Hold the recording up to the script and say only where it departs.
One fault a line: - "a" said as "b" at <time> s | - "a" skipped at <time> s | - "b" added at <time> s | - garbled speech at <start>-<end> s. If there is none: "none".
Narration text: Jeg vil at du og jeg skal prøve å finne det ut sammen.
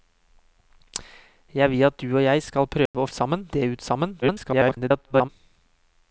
- "finne" said as "sammen" at 3.1 s
- garbled speech at 4.2-5.3 s